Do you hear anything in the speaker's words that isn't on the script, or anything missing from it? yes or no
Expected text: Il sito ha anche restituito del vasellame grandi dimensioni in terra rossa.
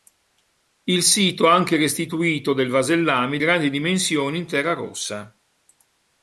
no